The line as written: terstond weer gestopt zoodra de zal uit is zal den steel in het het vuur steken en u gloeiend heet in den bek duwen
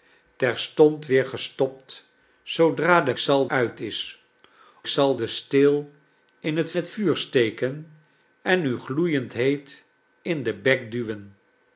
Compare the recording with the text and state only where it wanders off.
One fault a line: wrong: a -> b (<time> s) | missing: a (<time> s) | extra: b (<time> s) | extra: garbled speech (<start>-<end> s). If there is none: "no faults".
no faults